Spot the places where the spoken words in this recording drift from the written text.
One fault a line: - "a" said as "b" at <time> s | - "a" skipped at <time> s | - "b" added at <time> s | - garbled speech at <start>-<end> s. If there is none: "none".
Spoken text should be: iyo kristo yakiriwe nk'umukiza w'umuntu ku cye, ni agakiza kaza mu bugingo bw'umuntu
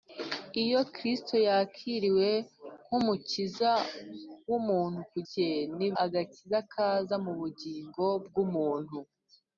none